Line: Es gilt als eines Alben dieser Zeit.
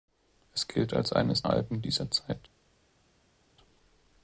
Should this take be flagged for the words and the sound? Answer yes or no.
no